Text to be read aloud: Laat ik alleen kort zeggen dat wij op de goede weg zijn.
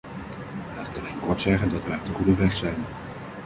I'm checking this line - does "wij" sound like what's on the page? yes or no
yes